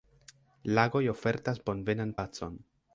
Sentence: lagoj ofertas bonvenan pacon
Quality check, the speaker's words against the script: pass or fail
pass